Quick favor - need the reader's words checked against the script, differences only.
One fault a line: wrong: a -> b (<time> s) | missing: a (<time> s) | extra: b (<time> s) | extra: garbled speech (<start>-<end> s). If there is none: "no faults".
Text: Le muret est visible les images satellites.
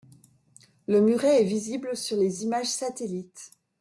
extra: sur (1.9 s)